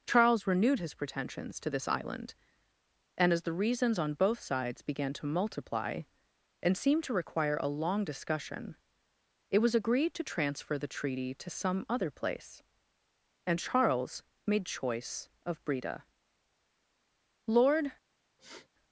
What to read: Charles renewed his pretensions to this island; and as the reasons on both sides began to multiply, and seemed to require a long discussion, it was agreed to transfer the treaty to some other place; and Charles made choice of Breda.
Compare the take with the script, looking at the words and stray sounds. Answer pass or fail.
fail